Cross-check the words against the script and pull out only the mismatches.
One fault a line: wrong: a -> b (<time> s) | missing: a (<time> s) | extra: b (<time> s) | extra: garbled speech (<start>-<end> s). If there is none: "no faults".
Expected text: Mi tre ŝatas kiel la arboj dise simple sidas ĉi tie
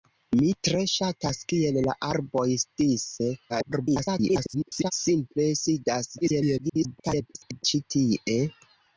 extra: garbled speech (3.5-4.9 s)
extra: garbled speech (6.2-7.6 s)